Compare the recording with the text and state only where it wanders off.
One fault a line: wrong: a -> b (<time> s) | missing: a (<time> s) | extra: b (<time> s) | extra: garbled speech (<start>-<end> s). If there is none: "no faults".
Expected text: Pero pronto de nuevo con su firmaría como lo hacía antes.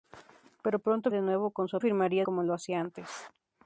no faults